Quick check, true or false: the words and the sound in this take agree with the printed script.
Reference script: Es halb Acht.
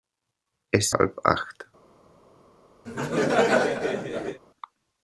false